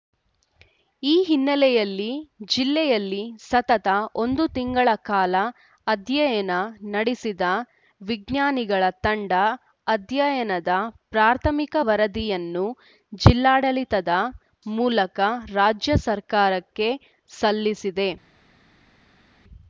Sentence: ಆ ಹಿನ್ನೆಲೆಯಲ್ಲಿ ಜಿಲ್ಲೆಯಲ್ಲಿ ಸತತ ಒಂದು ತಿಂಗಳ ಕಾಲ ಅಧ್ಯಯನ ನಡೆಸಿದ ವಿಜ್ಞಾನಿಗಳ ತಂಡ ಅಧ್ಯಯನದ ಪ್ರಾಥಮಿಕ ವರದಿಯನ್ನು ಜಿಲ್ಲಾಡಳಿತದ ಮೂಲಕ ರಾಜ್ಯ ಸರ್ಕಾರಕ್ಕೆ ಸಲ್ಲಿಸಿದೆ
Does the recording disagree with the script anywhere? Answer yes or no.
yes